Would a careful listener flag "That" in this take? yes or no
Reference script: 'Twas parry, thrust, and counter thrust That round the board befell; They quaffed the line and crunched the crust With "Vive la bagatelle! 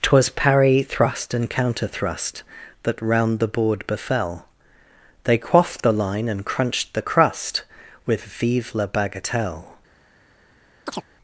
no